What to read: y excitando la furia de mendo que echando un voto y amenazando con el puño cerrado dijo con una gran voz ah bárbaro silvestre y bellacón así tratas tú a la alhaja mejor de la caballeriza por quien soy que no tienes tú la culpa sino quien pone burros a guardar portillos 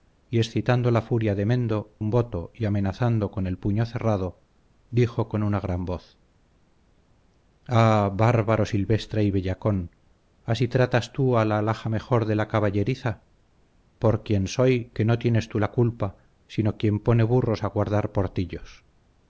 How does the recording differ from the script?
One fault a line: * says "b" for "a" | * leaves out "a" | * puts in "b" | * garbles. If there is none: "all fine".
* leaves out "que echando"